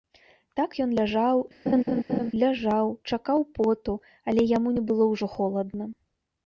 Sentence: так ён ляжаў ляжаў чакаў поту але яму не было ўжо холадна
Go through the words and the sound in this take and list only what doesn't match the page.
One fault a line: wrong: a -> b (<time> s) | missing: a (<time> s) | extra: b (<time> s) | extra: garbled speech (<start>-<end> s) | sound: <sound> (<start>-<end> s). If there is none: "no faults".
sound: laugh (1.7-2.3 s)